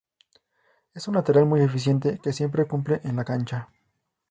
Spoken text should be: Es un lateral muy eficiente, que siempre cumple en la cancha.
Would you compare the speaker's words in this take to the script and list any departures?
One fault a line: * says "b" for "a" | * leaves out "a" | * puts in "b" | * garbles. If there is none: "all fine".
all fine